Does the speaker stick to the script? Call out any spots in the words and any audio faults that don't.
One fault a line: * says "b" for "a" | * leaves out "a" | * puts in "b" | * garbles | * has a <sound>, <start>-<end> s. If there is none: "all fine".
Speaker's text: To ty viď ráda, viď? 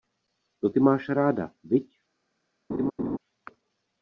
* says "máš" for "viď"
* has a laugh, 2.7-3.2 s